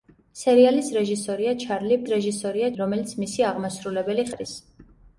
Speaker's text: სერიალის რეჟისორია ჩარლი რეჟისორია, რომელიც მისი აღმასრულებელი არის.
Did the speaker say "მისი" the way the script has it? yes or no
yes